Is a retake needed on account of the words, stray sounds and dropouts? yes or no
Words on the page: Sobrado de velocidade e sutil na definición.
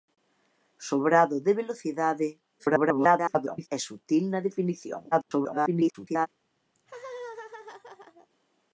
yes